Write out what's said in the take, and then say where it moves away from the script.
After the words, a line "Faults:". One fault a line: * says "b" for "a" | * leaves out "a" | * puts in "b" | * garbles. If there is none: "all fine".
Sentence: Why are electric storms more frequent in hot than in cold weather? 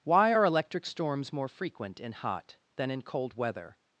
Why are electric storms more frequent in hot than in cold weather?
Faults:
all fine